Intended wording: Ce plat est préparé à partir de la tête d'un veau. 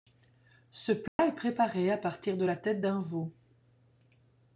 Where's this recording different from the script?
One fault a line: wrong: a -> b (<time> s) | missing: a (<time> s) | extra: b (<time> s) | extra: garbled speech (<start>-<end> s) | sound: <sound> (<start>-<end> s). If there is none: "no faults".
sound: dropout (1.1-1.2 s)